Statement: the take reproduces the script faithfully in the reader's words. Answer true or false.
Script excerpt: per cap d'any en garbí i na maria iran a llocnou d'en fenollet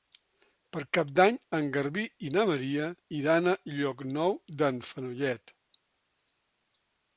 true